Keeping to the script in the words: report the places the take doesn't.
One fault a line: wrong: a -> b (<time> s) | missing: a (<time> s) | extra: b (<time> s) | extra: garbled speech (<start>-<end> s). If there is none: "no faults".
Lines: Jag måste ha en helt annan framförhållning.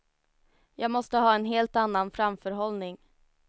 no faults